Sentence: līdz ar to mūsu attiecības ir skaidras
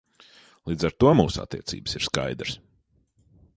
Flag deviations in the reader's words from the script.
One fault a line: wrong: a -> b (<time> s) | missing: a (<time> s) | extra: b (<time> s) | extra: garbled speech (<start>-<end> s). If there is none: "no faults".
no faults